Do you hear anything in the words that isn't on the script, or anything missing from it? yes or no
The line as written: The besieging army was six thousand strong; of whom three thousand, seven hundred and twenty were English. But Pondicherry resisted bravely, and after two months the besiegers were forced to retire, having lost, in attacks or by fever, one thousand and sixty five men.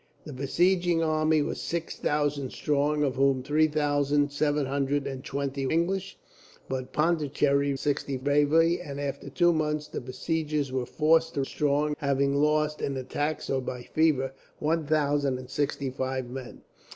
yes